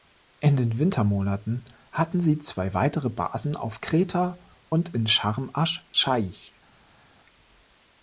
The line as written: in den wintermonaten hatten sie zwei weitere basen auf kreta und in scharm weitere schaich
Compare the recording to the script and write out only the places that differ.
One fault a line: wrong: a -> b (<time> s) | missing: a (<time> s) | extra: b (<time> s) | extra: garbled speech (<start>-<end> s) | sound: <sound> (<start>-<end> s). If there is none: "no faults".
wrong: weitere -> asch (5.5 s)